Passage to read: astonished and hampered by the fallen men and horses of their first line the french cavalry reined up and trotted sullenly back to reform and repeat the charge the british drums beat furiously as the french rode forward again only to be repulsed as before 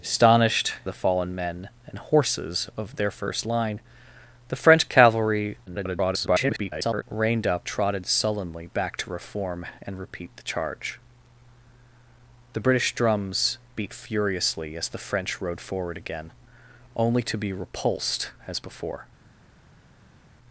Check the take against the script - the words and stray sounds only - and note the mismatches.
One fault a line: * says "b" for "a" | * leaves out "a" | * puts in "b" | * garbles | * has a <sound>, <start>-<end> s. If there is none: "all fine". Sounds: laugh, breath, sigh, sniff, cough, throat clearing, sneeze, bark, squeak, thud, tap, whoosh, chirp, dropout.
* leaves out "and hampered by"
* garbles
* leaves out "and"